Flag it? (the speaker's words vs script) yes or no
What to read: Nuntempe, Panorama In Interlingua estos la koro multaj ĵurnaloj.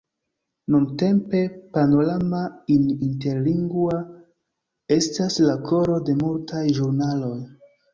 yes